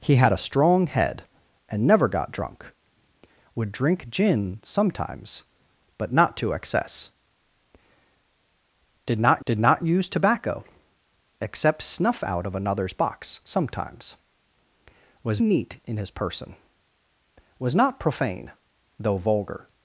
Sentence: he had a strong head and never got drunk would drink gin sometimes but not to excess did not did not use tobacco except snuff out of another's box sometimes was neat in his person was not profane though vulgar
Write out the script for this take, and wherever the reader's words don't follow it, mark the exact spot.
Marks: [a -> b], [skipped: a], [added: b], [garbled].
he had a strong head and never got drunk would drink gin sometimes but not to excess did not did not use tobacco except snuff out of another's box sometimes was neat in his person was not profane though vulgar